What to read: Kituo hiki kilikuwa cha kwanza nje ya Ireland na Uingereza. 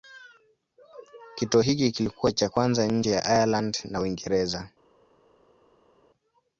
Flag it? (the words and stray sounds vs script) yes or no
no